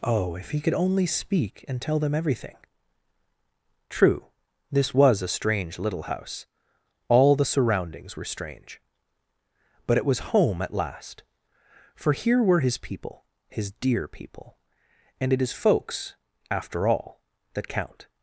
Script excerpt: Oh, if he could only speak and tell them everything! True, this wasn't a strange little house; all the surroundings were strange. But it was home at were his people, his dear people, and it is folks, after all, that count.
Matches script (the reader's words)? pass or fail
fail